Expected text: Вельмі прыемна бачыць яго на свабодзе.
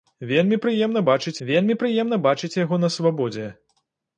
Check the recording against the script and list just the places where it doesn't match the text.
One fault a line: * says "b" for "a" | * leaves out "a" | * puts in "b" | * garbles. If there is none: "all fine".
* puts in "вельмі прыемна бачыць"